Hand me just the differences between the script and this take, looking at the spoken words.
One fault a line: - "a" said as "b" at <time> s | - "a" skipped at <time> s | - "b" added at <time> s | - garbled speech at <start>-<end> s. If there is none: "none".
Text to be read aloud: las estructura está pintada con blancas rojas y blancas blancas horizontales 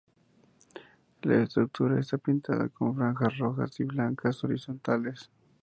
- "las" said as "la" at 1.2 s
- "blancas" said as "franjas" at 3.0 s
- "blancas" skipped at 4.4 s